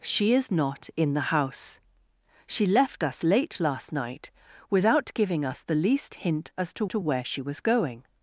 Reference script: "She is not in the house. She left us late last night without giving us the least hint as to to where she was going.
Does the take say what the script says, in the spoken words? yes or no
yes